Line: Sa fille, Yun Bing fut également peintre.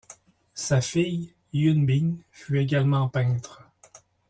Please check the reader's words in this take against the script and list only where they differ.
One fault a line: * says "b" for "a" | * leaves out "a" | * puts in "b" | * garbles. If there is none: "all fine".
all fine